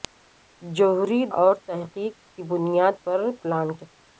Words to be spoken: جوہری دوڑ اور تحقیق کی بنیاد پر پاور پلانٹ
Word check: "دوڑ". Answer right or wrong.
wrong